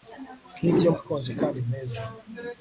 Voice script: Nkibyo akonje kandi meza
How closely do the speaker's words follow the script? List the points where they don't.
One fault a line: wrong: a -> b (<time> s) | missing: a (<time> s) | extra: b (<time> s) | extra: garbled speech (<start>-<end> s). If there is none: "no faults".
no faults